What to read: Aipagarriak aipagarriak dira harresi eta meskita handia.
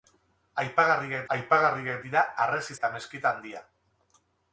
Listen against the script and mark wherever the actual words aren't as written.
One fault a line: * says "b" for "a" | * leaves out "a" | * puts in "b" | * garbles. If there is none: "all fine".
all fine